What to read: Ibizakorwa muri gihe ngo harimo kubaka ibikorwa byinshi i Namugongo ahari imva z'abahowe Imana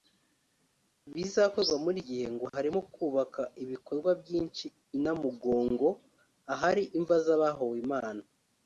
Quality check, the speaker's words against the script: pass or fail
pass